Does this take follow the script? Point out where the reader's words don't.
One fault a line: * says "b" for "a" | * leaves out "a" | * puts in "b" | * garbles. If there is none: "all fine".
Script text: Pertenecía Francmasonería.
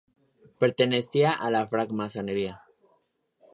* puts in "a la"